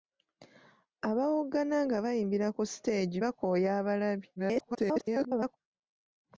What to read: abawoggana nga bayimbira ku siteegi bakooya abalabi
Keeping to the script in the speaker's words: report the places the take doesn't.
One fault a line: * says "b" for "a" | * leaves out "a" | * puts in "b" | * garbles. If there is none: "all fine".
* garbles